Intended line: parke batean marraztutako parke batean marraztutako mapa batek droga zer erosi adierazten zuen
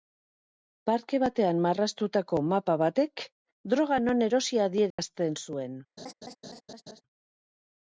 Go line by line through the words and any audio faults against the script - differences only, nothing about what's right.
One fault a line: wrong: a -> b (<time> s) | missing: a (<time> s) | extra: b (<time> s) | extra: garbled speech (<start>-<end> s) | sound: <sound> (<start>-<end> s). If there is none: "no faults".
missing: parke batean marraztutako (2.4 s)
wrong: zer -> non (4.1 s)
sound: dropout (4.9-5.0 s)
sound: laugh (6.0-7.0 s)